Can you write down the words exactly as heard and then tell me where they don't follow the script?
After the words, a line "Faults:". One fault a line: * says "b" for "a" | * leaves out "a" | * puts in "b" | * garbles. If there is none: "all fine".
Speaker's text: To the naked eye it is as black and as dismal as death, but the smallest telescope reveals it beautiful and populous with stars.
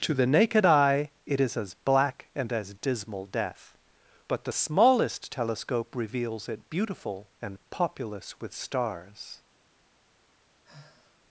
To the naked eye it is as black and as dismal death, but the smallest telescope reveals it beautiful and populous with stars.
Faults:
* leaves out "as"